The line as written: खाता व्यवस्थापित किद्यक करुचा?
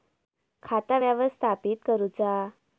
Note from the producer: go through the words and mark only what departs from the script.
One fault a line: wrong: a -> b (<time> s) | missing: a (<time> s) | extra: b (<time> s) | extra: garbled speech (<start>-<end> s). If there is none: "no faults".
missing: किद्यक (1.8 s)